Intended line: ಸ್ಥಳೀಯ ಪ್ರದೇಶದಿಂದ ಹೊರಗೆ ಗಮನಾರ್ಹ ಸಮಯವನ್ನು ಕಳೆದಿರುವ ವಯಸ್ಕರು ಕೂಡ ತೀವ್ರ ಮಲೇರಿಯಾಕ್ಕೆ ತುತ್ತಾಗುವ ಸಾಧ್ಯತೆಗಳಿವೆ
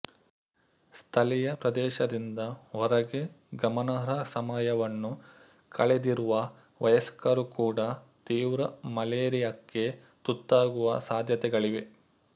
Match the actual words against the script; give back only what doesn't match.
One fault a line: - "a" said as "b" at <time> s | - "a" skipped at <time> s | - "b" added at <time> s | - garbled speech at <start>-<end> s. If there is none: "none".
none